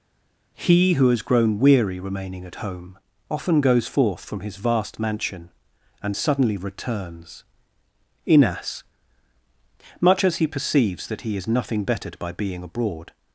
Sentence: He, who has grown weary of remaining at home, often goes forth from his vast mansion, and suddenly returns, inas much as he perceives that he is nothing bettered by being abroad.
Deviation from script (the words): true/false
true